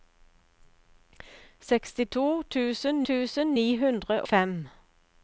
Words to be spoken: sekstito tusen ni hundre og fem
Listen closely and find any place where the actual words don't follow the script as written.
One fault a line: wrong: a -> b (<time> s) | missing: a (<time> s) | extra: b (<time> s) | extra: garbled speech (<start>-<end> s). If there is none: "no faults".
extra: tusen (3.1 s)
missing: og (4.2 s)